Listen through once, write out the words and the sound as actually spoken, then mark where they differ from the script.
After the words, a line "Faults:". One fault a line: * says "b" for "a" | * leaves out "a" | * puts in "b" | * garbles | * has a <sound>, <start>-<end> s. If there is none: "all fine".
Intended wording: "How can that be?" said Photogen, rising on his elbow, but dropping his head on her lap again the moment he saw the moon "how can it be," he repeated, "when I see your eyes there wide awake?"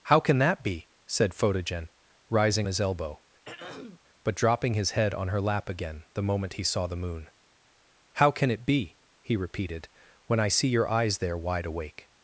"How can that be?" said Photogen, rising his elbow, but dropping his head on her lap again the moment he saw the moon "how can it be," he repeated, "when I see your eyes there wide awake?"
Faults:
* leaves out "on"
* has a throat clearing, 3.4-4.0 s